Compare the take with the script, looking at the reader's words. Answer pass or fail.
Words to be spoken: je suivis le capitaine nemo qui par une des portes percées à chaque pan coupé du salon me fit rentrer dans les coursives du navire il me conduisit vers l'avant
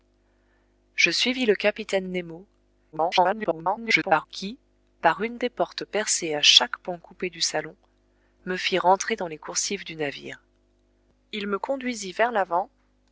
fail